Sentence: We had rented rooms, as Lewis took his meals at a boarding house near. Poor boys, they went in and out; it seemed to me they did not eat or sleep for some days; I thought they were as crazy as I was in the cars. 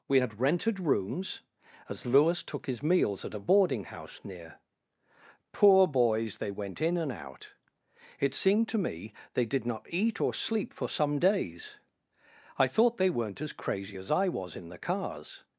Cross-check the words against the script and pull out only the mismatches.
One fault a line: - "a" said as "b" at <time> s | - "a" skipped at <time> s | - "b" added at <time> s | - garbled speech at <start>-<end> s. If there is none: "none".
- "were" said as "weren't" at 13.1 s